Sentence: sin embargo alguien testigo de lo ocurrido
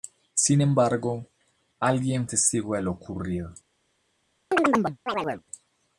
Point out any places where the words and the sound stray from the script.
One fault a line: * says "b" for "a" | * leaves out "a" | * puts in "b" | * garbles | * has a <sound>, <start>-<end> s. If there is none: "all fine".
* has a chirp, 4.5-5.4 s